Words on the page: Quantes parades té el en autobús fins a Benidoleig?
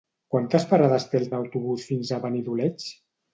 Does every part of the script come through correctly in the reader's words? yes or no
yes